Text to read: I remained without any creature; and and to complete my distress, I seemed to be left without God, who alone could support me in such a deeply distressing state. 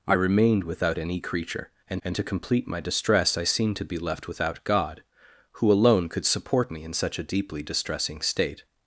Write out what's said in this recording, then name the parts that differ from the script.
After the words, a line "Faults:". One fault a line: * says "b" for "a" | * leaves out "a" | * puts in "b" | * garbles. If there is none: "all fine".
I remained without any creature; and and to complete my distress, I seemed to be left without God, who alone could support me in such a deeply distressing state.
Faults:
all fine